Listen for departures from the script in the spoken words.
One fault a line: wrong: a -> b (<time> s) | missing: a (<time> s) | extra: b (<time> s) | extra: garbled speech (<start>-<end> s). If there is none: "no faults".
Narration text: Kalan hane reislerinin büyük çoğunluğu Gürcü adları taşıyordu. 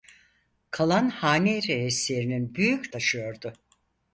missing: çoğunluğu Gürcü adları (2.9 s)